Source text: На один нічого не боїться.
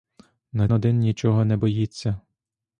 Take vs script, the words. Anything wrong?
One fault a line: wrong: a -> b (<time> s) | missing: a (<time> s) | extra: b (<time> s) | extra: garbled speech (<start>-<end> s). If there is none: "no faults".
no faults